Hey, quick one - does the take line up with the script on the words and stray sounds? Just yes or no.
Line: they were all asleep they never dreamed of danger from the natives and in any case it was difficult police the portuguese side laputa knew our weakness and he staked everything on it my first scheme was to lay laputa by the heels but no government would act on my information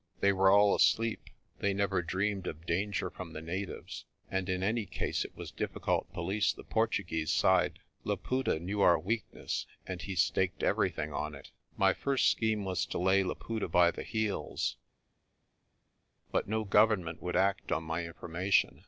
yes